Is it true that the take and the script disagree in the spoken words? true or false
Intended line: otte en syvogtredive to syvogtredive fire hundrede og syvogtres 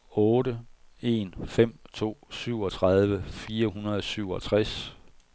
true